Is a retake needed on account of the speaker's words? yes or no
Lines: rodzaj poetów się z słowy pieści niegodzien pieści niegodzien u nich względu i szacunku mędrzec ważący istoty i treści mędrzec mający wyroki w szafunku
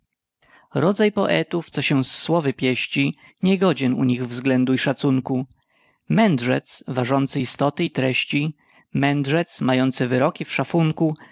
yes